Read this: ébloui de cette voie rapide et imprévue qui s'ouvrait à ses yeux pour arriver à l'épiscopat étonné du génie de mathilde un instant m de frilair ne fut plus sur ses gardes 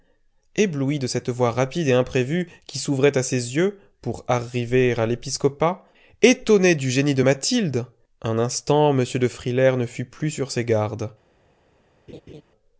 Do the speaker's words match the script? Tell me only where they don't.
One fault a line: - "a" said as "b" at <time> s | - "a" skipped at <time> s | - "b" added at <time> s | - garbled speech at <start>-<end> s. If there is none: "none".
none